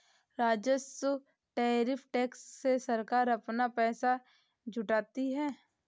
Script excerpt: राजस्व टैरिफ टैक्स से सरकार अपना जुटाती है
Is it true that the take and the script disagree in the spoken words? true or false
true